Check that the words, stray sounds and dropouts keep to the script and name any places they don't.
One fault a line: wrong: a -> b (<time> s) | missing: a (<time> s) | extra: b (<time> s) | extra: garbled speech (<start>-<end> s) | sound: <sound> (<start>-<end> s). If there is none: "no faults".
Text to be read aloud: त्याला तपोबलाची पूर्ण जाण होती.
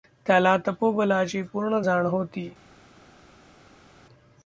no faults